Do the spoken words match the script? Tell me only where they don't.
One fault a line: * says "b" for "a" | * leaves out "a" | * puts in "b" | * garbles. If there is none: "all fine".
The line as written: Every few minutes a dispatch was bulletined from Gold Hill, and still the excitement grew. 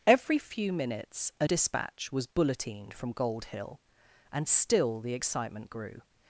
all fine